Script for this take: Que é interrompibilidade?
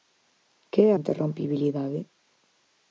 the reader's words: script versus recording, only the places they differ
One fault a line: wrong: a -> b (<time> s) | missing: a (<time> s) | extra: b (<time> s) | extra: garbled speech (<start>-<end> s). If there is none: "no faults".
no faults